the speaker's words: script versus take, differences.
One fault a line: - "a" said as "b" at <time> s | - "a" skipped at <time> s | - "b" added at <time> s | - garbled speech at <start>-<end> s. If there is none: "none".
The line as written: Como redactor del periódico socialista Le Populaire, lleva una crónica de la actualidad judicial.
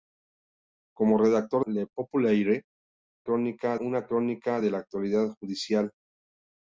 - "del periódico socialista" skipped at 1.6 s
- "lleva" said as "crónica" at 3.2 s